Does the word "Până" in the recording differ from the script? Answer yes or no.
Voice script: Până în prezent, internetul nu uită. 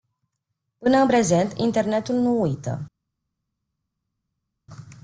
no